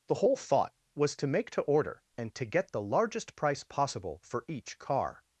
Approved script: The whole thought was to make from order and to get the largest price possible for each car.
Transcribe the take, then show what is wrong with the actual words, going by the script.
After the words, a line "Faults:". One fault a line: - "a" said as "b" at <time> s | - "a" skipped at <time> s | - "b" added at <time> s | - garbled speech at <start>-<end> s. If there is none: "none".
The whole thought was to make to order and to get the largest price possible for each car.
Faults:
- "from" said as "to" at 1.5 s